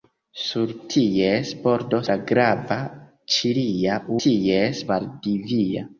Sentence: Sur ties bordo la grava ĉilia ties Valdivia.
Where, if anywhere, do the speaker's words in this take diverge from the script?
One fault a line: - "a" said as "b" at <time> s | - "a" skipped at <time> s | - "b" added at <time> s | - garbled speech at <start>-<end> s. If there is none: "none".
none